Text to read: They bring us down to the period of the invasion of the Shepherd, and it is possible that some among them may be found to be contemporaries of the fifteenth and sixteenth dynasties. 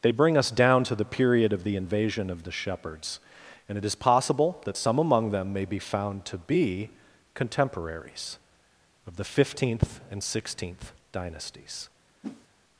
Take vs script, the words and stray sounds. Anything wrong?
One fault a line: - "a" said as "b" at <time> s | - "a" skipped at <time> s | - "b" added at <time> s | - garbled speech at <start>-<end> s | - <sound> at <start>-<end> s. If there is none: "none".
- "Shepherd" said as "Shepherds" at 2.5 s
- whoosh at 12.2-12.5 s